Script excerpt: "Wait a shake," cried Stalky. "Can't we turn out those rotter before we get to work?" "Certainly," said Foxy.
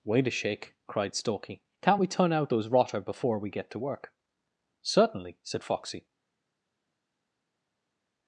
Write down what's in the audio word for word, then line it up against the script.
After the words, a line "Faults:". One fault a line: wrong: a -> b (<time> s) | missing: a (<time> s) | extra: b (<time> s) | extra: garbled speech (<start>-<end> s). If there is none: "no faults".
"Wait a shake," cried Stalky. "Can't we turn out those rotter before we get to work?" "Certainly," said Foxy.
Faults:
no faults